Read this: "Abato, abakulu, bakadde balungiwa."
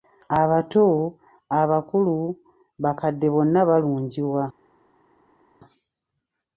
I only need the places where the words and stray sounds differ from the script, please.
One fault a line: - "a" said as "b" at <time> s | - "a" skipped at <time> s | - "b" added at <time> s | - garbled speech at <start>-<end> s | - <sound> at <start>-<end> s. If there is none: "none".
- "bonna" added at 3.3 s